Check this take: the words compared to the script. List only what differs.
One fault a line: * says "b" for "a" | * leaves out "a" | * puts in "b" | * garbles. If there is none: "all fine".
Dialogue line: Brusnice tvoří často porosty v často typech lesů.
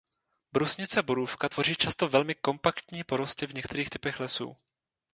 * puts in "borůvka"
* puts in "velmi kompaktní"
* says "některých" for "často"